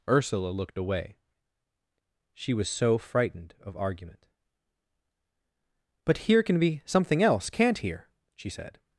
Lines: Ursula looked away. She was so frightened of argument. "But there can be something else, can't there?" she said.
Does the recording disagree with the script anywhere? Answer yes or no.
yes